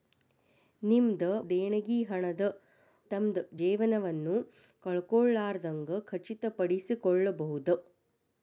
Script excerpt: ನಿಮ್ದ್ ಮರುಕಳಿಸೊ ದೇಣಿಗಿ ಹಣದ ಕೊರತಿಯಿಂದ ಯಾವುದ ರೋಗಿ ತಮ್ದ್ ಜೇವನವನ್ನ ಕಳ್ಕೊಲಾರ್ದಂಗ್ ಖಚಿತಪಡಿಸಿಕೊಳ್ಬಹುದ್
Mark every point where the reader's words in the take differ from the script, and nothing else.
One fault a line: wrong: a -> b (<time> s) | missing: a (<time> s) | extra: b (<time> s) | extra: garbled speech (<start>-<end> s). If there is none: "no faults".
missing: ಮರುಕಳಿಸೊ (1.2 s)
missing: ಕೊರತಿಯಿಂದ ಯಾವುದ ರೋಗಿ (2.4 s)